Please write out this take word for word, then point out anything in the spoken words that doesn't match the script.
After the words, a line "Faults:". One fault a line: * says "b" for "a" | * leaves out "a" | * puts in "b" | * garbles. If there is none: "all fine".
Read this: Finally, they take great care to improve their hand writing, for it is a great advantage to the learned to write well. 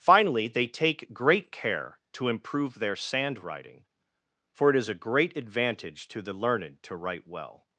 Finally, they take great care to improve their sand writing, for it is a great advantage to the learned to write well.
Faults:
* says "sand" for "hand"